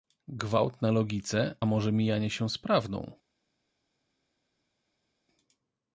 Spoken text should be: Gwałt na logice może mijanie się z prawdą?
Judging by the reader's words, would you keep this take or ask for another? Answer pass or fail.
pass